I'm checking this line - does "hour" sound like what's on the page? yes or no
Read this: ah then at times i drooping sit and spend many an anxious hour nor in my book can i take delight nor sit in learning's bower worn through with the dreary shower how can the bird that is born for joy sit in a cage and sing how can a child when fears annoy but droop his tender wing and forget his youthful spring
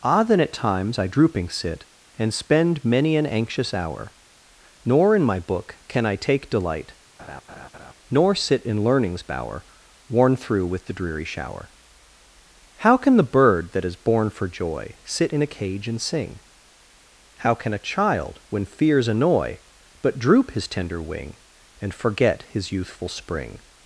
yes